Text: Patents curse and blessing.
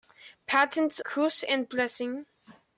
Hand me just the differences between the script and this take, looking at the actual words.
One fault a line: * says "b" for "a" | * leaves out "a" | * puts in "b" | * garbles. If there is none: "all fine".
all fine